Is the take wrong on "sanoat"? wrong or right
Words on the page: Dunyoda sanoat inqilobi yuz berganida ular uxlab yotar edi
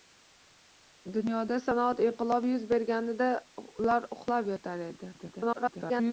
right